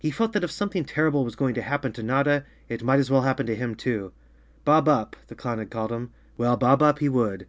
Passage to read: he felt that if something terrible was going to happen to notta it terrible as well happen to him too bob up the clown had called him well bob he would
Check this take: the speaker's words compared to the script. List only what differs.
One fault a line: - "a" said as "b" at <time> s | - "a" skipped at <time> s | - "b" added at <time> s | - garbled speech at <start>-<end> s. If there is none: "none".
- "terrible" said as "might" at 2.8 s
- "up" added at 6.8 s